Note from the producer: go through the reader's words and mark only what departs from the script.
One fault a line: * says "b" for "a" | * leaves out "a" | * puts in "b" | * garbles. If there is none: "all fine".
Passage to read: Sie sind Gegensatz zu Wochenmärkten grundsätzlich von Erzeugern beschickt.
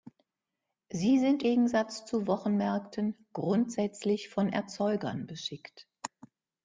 all fine